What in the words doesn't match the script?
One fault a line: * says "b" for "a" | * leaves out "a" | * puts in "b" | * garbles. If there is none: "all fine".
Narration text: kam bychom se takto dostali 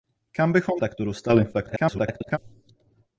* leaves out "se"
* garbles